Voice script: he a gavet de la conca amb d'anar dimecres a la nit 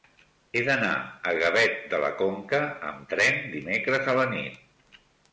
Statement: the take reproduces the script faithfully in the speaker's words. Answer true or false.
false